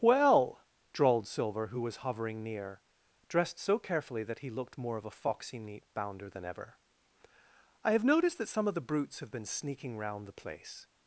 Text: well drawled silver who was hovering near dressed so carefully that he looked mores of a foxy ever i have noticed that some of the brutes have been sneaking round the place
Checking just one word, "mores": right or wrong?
wrong